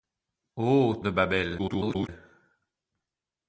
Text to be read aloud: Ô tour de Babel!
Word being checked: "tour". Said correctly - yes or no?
no